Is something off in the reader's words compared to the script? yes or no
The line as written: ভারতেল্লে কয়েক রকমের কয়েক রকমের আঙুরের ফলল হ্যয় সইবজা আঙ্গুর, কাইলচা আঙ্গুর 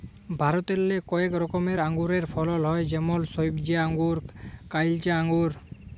yes